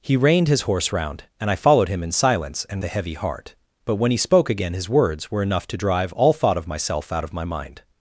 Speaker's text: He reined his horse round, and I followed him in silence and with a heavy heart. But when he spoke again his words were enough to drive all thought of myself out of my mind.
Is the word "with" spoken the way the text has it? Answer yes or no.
no